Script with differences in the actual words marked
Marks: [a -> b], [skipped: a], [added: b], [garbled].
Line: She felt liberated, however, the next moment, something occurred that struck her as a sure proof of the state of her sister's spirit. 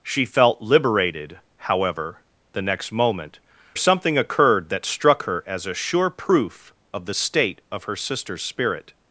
She felt liberated, however, the next moment, something occurred that struck her as a sure proof of the state of her sister's spirit.